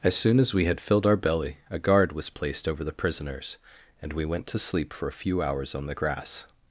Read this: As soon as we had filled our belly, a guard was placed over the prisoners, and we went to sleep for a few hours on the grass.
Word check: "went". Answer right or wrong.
right